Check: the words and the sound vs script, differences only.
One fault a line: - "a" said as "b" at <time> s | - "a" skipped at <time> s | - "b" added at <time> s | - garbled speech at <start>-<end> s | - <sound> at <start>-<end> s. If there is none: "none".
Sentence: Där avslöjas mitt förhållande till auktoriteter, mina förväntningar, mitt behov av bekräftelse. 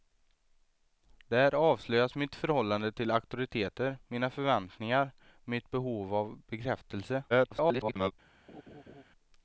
- garbled speech at 7.3-8.1 s
- laugh at 8.5-9.0 s